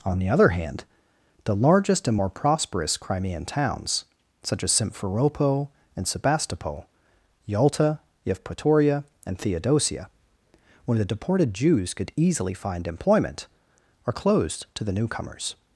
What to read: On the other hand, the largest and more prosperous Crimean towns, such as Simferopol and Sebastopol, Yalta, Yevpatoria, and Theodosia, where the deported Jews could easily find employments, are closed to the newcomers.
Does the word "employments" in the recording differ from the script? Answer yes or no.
yes